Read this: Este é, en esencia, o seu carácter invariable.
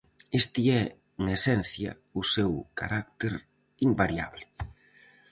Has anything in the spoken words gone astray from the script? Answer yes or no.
no